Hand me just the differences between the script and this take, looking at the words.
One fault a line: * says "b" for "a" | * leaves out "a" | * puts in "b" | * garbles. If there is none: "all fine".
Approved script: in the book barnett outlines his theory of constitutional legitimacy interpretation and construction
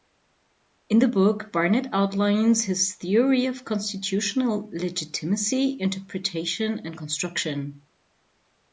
all fine